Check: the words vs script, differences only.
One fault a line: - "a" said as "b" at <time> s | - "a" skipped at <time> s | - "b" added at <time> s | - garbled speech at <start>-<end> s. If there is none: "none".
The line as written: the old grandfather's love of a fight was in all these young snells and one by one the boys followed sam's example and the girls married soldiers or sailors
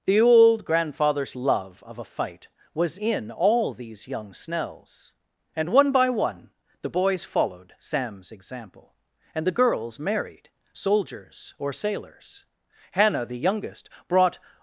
- "hannah the youngest brought" added at 12.9 s